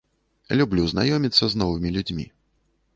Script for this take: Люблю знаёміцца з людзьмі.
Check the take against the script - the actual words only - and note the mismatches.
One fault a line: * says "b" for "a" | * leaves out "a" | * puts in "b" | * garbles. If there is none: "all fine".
* puts in "новымі"